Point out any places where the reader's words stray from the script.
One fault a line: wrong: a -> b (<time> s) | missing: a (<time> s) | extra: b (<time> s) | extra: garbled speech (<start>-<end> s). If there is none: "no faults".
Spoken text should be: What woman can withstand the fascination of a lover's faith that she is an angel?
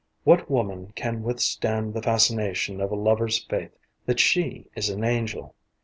no faults